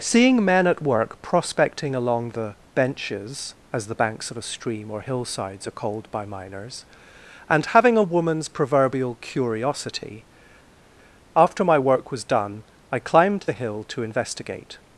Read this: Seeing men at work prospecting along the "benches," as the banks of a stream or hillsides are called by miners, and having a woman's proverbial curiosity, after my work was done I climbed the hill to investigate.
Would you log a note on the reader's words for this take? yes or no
no